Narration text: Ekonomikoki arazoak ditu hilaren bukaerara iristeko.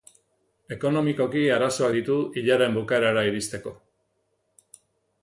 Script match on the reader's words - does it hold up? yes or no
yes